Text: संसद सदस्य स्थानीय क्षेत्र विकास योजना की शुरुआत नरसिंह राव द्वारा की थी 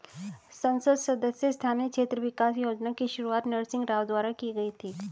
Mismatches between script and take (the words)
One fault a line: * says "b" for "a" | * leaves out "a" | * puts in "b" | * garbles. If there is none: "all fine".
* puts in "गई"